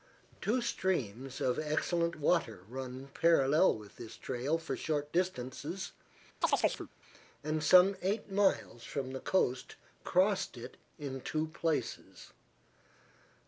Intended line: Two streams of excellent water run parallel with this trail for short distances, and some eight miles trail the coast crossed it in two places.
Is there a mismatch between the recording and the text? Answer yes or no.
yes